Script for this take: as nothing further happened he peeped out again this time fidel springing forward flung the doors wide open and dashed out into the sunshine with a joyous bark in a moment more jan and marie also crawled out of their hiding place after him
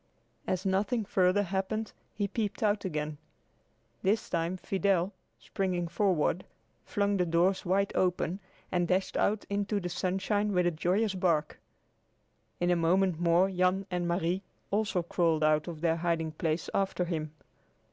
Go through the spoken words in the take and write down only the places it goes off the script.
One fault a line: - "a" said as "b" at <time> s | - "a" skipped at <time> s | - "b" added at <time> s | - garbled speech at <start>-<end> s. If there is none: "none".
none